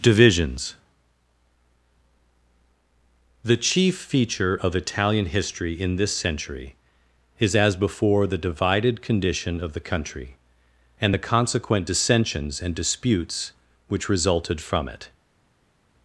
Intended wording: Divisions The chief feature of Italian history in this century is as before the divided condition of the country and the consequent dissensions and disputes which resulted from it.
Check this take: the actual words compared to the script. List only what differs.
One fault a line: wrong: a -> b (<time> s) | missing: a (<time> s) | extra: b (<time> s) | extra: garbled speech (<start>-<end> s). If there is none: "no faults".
no faults